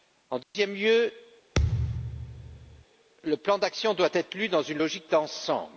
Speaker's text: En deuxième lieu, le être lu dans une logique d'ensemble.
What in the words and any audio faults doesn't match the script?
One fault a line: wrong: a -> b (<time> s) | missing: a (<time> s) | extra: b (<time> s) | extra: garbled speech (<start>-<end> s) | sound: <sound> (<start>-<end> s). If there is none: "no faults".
sound: dropout (0.4-0.5 s)
sound: thud (1.6-2.9 s)
extra: plan d'action doit (3.4 s)